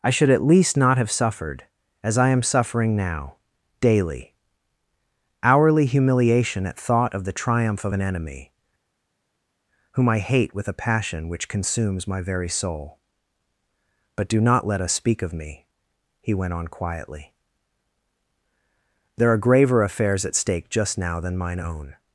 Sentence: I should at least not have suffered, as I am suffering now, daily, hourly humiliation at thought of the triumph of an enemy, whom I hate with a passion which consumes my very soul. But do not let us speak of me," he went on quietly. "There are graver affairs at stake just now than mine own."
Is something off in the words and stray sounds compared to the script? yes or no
no